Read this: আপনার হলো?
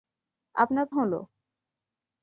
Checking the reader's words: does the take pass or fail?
pass